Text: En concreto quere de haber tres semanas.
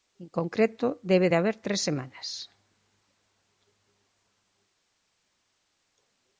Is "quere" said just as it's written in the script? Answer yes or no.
no